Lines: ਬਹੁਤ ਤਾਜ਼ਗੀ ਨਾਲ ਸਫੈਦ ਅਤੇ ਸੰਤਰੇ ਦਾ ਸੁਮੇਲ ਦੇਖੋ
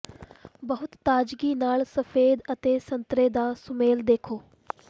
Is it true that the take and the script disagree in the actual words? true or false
false